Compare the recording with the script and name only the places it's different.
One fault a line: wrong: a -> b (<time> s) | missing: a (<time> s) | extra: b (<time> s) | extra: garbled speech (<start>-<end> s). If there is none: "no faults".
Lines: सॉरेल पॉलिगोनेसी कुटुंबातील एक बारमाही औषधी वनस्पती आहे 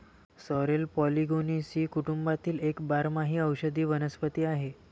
no faults